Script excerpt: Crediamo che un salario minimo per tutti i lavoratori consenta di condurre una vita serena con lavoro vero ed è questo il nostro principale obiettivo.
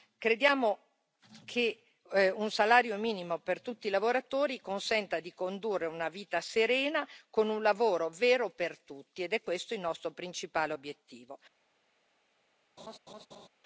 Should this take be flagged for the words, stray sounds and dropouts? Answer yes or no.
yes